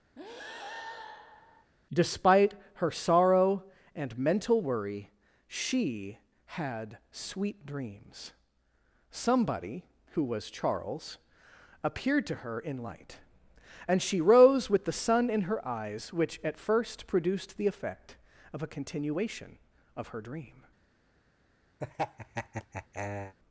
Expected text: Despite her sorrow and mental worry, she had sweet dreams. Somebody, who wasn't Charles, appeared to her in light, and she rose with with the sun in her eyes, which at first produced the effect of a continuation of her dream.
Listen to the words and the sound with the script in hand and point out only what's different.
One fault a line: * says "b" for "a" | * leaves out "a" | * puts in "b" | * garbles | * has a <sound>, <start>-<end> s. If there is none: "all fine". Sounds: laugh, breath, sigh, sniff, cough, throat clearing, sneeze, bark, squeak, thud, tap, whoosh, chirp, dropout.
* has a breath, 0.2-1.7 s
* says "was" for "wasn't"
* leaves out "with"
* has a laugh, 21.8-23.3 s